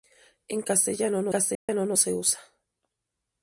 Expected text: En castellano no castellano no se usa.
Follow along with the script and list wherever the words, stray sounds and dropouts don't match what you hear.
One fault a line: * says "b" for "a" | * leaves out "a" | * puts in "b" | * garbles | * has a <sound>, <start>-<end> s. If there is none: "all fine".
* has a dropout, 1.5-1.7 s